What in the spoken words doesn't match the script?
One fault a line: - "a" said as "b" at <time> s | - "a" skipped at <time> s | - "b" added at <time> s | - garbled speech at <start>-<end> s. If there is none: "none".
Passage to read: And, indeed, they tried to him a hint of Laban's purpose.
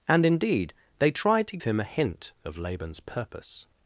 none